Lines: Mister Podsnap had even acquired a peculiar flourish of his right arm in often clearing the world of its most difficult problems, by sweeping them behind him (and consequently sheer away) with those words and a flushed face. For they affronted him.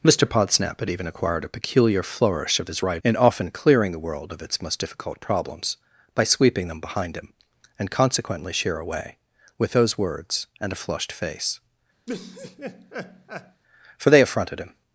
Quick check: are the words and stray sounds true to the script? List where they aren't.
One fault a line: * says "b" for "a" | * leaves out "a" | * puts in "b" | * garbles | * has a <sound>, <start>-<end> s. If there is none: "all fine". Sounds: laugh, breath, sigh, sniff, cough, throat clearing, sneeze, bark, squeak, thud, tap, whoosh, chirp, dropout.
* leaves out "arm"
* has a laugh, 12.1-13.6 s